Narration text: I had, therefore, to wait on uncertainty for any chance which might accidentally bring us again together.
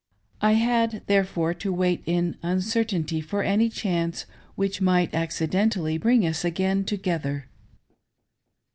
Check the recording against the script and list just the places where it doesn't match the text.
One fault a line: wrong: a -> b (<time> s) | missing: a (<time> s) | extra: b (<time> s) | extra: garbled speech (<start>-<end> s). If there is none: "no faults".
wrong: on -> in (2.1 s)